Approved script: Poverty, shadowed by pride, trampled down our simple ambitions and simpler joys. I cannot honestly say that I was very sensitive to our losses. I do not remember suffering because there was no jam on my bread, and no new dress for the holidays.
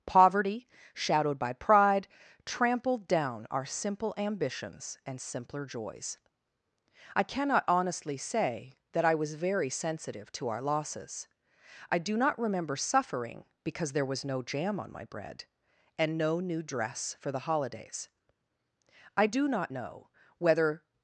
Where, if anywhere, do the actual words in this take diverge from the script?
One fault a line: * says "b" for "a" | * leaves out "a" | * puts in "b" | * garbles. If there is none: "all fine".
* puts in "I do not know whether"